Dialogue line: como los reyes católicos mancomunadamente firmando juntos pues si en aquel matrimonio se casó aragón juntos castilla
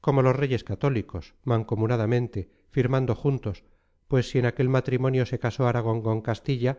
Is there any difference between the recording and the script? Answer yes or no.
yes